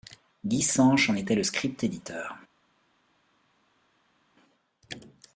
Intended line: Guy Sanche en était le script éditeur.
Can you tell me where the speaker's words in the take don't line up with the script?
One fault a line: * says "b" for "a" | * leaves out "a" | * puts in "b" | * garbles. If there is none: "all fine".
all fine